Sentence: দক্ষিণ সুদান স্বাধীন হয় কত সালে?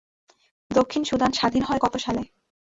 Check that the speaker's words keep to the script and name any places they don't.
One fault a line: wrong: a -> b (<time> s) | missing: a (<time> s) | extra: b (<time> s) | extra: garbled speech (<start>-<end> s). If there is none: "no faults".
no faults